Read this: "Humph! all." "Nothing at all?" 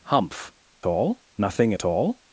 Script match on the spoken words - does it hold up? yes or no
yes